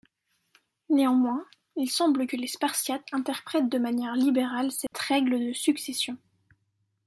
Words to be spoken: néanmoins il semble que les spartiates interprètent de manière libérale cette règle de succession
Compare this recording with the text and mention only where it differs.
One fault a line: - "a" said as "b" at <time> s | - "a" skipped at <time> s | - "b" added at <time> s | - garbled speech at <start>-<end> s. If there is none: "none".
none